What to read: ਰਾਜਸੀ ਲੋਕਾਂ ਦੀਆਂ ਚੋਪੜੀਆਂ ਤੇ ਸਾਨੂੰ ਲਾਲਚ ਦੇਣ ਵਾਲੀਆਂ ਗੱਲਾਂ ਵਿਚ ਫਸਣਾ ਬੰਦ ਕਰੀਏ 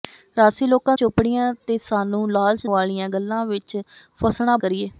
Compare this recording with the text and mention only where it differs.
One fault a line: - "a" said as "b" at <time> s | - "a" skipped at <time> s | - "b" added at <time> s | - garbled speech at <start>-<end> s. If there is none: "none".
- "ਦੀਆਂ" skipped at 0.9 s
- "ਦੇਣ" skipped at 2.7 s
- "ਬੰਦ" skipped at 4.6 s